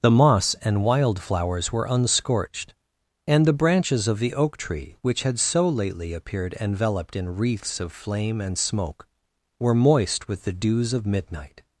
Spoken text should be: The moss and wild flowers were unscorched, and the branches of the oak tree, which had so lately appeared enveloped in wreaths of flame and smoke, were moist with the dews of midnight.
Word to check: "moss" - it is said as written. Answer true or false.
true